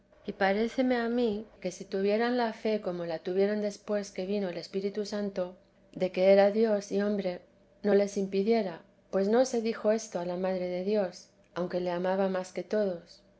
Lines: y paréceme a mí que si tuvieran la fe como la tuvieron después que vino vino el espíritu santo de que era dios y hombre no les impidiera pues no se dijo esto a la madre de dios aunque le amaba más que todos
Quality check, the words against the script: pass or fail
fail